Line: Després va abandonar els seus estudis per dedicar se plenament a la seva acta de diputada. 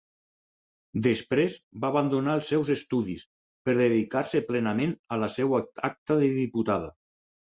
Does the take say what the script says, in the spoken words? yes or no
yes